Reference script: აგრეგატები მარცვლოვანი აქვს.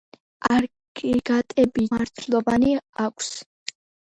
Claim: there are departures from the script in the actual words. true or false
false